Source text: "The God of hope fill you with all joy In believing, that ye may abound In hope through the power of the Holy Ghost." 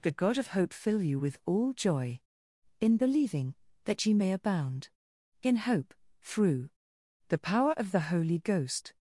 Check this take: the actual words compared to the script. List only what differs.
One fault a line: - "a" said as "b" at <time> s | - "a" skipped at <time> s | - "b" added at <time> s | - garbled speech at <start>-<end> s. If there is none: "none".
none